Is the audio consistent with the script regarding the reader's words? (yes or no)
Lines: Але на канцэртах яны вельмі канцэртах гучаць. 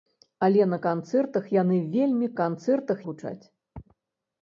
yes